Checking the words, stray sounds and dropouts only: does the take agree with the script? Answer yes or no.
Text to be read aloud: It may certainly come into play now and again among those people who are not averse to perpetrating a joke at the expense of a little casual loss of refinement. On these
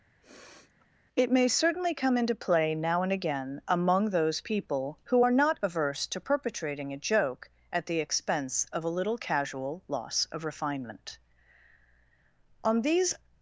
no